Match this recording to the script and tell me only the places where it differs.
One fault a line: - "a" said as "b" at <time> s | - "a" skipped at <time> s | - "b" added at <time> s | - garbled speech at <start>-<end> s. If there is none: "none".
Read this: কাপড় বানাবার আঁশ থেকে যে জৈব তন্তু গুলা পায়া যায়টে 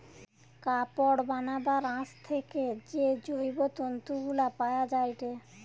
none